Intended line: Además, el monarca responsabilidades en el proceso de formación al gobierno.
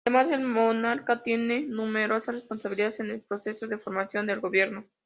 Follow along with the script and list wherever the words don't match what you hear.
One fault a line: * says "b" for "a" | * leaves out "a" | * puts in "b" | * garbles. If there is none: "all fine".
* puts in "tiene numerosas"
* says "del" for "al"